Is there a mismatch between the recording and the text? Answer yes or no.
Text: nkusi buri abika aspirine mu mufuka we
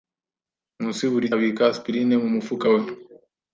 no